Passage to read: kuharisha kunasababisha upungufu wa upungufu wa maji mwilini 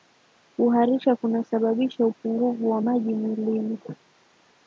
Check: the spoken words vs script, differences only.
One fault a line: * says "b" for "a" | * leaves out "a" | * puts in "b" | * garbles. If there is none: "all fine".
* leaves out "upungufu wa"